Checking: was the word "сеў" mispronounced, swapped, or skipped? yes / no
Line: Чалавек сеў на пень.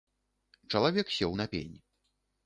no